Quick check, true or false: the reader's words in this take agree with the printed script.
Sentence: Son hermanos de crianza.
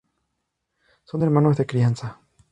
true